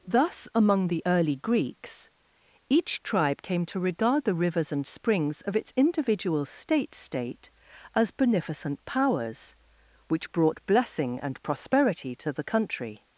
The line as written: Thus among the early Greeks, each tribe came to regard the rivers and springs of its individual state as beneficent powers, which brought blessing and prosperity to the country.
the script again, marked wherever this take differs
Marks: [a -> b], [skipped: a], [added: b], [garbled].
Thus among the early Greeks, each tribe came to regard the rivers and springs of its individual state [added: state] as beneficent powers, which brought blessing and prosperity to the country.